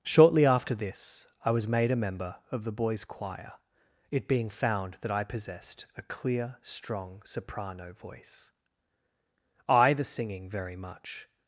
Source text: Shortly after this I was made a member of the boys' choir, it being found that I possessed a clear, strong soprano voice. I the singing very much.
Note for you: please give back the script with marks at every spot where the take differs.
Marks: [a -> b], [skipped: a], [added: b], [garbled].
Shortly after this I was made a member of the boys' choir, it being found that I possessed a clear, strong soprano voice. I the singing very much.